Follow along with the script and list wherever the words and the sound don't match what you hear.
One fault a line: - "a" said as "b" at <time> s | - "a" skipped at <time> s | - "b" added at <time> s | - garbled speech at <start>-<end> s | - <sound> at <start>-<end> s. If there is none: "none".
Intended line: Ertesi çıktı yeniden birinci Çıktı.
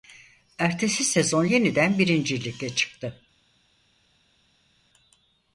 - "çıktı" said as "sezon" at 1.0 s
- "Lig'e" added at 2.4 s